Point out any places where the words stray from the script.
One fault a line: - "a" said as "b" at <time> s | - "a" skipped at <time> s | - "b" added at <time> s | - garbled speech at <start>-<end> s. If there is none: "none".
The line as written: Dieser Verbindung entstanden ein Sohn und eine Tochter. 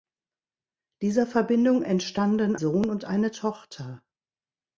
- "ein" skipped at 2.5 s